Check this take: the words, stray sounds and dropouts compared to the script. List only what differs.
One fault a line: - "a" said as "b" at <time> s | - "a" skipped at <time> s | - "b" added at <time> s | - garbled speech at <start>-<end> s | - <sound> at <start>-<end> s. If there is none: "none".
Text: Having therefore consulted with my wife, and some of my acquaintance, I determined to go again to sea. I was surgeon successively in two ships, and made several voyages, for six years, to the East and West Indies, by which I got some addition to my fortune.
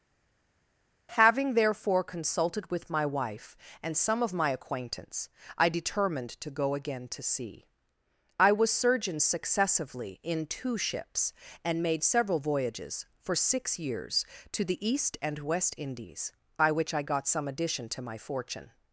none